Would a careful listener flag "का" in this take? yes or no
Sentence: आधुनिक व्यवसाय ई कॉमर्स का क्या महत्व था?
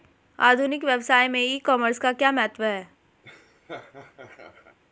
no